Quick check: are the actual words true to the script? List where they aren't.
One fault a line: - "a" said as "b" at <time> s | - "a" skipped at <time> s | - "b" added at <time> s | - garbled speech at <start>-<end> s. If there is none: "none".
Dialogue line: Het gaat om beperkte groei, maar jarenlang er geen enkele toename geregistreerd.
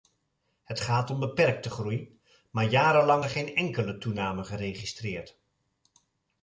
none